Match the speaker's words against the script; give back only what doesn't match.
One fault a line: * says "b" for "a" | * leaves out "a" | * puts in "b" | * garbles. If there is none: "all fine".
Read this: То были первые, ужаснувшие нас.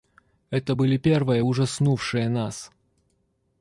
* says "Это" for "То"